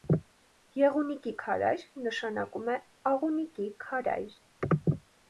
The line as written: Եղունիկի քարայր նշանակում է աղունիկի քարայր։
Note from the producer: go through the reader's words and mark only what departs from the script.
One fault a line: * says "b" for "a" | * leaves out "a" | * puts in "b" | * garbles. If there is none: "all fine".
all fine